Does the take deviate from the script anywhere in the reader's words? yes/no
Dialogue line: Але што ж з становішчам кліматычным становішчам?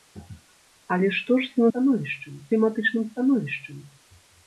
no